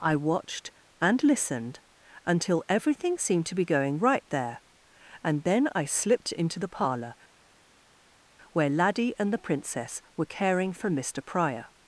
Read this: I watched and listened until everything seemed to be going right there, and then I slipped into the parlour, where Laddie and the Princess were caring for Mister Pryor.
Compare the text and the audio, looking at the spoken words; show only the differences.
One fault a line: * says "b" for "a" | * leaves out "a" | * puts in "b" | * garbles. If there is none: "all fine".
all fine